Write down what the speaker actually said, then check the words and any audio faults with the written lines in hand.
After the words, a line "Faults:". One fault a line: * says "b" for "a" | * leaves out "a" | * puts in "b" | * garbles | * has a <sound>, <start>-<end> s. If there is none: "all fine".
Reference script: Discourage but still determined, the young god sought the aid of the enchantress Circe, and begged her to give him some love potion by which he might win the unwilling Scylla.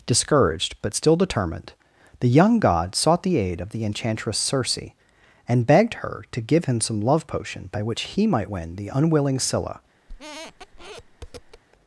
Discouraged but still determined, the young god sought the aid of the enchantress Circe, and begged her to give him some love potion by which he might win the unwilling Scylla.
Faults:
* says "Discouraged" for "Discourage"
* has a squeak, 10.1-11.6 s